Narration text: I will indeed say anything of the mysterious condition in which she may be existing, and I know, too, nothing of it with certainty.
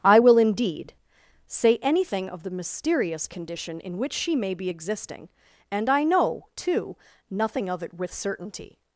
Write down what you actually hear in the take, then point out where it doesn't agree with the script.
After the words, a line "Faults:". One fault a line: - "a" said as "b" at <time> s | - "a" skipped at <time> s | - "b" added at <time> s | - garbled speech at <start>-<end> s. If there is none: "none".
I will indeed say anything of the mysterious condition in which she may be existing, and I know, too, nothing of it with certainty.
Faults:
none